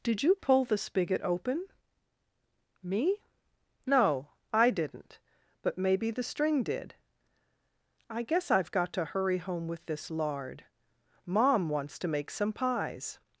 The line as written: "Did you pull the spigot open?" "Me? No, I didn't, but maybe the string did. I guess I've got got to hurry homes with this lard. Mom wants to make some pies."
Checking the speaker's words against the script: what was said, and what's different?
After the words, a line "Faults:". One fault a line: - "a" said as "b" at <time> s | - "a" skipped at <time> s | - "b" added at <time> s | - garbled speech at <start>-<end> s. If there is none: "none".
"Did you pull the spigot open?" "Me? No, I didn't, but maybe the string did. I guess I've got to hurry home with this lard. Mom wants to make some pies."
Faults:
- "got" skipped at 8.9 s
- "homes" said as "home" at 9.4 s